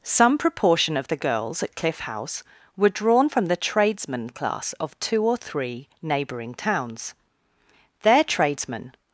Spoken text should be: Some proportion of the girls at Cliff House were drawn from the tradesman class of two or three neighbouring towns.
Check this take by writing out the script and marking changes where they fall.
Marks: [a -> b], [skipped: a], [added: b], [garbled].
Some proportion of the girls at Cliff House were drawn from the tradesman class of two or three neighbouring towns. [added: Their tradesmen]